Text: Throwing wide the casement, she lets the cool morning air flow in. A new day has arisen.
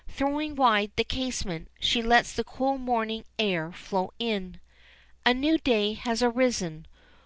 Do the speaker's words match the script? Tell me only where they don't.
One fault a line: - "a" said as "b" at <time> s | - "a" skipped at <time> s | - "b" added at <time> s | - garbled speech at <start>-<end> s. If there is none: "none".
none